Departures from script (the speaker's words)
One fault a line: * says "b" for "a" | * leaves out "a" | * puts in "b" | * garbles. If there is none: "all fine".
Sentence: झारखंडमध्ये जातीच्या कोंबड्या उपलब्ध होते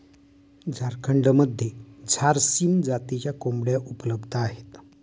* puts in "झारसीम"
* says "आहेत" for "होते"